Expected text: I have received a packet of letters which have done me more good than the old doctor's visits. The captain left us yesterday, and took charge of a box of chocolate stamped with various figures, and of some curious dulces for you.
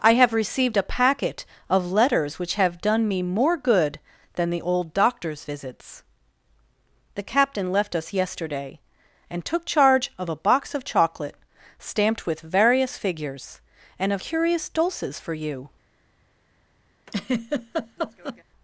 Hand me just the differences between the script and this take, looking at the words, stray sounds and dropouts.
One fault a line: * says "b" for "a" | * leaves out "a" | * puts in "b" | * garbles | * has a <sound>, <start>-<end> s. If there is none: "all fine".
* leaves out "some"
* has a laugh, 17.1-18.4 s